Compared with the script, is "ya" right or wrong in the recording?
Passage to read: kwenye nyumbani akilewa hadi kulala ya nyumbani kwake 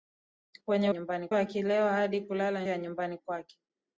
right